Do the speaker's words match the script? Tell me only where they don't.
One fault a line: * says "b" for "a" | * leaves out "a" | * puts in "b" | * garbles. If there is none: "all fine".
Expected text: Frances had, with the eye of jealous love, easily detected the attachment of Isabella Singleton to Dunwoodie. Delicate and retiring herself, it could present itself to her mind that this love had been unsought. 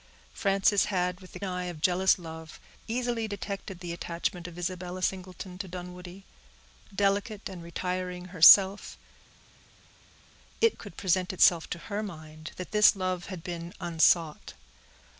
all fine